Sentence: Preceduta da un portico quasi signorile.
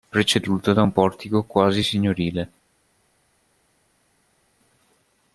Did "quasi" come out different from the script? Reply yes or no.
no